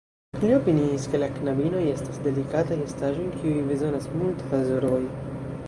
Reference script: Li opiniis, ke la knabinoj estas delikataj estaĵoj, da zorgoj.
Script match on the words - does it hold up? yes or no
no